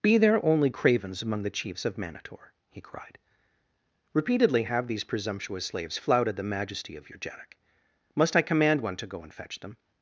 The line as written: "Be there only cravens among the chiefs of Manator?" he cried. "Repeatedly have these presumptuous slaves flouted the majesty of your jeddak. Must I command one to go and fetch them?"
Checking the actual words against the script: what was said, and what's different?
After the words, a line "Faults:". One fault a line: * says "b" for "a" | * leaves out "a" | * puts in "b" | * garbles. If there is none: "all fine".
"Be there only cravens among the chiefs of Manator?" he cried. "Repeatedly have these presumptuous slaves flouted the majesty of your jeddak. Must I command one to go and fetch them?"
Faults:
all fine